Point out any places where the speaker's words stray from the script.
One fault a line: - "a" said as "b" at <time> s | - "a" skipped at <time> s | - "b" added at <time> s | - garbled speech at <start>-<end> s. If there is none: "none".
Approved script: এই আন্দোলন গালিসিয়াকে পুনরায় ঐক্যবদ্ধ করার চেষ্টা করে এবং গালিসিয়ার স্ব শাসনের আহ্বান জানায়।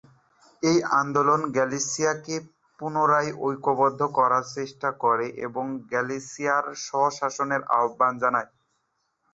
none